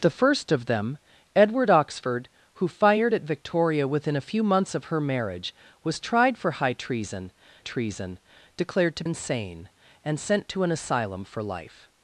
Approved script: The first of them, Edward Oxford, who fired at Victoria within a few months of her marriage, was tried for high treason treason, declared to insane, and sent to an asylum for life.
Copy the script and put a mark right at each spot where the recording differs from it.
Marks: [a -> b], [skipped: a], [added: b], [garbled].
The first of them, Edward Oxford, who fired at Victoria within a few months of her marriage, was tried for high treason treason, declared to insane, and sent to an asylum for life.